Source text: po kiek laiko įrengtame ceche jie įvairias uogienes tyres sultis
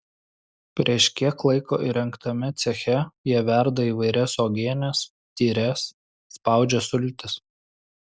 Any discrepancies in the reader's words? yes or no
yes